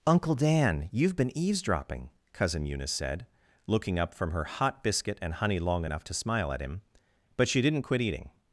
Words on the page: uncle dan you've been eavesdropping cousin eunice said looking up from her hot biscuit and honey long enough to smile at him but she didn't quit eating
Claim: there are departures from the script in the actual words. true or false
false